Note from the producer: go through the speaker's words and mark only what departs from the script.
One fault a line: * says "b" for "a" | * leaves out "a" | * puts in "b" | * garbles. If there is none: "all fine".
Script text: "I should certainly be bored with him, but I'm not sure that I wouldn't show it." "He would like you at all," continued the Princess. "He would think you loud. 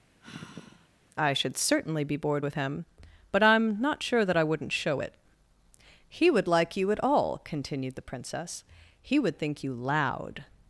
all fine